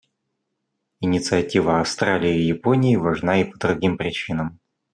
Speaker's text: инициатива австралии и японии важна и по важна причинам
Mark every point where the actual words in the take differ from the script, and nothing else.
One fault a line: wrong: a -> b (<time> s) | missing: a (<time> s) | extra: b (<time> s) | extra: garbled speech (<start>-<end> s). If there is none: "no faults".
wrong: важна -> другим (3.6 s)